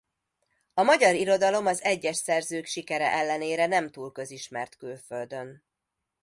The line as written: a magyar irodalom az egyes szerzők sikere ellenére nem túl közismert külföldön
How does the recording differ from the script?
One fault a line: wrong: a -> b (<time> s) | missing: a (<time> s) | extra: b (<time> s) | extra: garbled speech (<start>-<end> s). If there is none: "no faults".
no faults